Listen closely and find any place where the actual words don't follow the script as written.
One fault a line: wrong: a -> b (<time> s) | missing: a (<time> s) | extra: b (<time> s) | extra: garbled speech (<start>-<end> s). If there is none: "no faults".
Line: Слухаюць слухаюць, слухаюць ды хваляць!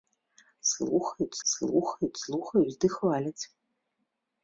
no faults